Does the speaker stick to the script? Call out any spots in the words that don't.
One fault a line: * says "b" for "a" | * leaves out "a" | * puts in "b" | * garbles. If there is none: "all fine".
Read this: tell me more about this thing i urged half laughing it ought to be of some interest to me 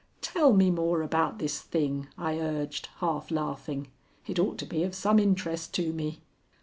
all fine